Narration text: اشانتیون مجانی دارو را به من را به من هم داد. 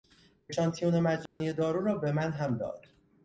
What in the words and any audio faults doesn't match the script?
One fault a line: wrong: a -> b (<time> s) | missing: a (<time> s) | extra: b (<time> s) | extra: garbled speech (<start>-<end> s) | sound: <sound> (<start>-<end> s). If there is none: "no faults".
sound: dropout (1.3-1.4 s)
missing: را به من (2.3 s)